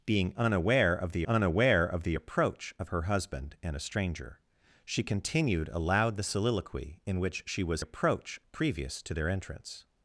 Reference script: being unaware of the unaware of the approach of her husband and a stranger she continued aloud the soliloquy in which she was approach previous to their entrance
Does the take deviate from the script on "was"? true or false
false